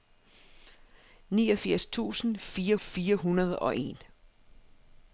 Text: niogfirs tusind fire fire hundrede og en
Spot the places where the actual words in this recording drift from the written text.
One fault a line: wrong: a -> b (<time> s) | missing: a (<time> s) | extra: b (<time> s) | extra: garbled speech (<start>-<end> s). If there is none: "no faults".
no faults